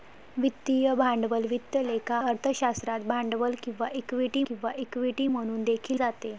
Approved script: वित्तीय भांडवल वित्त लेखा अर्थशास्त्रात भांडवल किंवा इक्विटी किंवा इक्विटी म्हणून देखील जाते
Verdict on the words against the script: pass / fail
pass